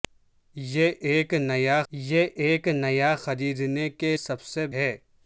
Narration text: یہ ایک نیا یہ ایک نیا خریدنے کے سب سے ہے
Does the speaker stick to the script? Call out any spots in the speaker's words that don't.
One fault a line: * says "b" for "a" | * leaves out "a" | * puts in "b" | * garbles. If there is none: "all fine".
all fine